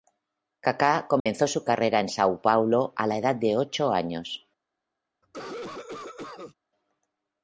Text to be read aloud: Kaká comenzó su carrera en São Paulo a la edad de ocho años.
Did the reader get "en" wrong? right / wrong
right